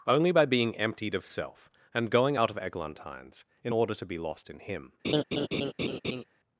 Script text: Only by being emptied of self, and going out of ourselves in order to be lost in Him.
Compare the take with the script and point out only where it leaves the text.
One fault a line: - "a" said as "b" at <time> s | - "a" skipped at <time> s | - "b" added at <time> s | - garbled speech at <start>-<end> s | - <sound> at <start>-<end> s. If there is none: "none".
- "ourselves" said as "eglantines" at 2.6 s
- laugh at 5.0-6.2 s